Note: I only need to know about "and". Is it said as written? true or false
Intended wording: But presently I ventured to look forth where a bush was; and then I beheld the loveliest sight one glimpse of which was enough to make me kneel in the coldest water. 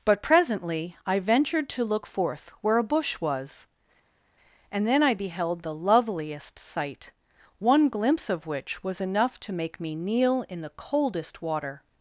true